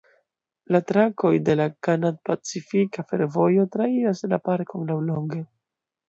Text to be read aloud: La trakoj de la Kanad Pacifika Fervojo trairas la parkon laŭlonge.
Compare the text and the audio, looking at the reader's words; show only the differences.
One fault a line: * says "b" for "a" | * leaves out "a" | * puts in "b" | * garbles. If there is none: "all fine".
all fine